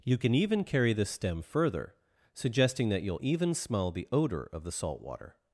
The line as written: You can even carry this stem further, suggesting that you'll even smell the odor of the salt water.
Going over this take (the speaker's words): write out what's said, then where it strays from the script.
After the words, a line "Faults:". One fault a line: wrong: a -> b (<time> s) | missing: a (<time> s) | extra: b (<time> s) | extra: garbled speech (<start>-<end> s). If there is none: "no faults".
You can even carry this stem further, suggesting that you'll even smell the odor of the salt water.
Faults:
no faults